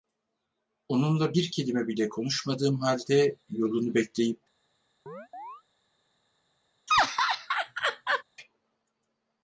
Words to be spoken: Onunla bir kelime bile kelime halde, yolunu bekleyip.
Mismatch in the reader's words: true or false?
true